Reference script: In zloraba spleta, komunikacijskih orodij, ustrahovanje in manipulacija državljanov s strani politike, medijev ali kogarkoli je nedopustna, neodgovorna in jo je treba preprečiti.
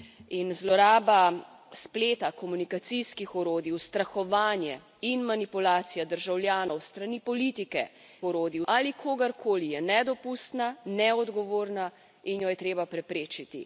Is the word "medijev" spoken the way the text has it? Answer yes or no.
no